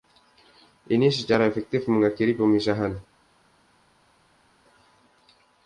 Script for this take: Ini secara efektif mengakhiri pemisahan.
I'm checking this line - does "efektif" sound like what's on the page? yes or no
yes